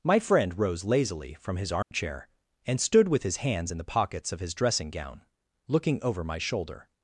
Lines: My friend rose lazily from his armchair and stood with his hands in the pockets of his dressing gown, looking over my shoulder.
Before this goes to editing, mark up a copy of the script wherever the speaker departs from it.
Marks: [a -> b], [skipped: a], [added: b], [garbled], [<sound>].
My friend rose lazily from his armchair [dropout] and stood with his hands in the pockets of his dressing gown, looking over my shoulder.